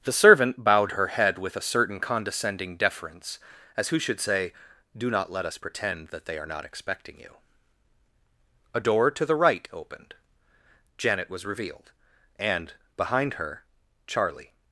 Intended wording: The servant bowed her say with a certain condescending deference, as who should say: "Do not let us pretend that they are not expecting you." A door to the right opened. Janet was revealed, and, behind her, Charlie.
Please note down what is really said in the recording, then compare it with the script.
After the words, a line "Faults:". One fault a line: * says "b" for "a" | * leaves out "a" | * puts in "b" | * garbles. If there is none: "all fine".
The servant bowed her head with a certain condescending deference, as who should say: "Do not let us pretend that they are not expecting you." A door to the right opened. Janet was revealed, and, behind her, Charlie.
Faults:
* says "head" for "say"